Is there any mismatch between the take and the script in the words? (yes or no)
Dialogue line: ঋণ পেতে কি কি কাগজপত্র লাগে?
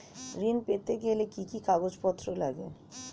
yes